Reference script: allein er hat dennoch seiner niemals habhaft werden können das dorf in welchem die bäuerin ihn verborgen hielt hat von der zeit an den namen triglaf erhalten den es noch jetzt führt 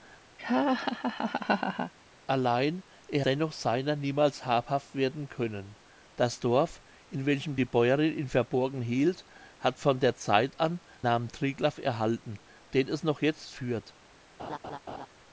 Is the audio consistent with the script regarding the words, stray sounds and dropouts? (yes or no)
no